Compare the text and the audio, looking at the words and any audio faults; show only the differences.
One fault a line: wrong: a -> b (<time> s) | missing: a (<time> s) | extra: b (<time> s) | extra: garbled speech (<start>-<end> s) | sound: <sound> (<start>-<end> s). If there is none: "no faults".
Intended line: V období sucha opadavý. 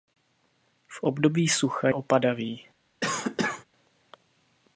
sound: cough (3.0-3.6 s)